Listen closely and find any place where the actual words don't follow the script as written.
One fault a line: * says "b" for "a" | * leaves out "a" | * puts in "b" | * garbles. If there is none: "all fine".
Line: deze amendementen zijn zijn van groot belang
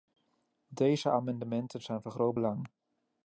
* leaves out "zijn"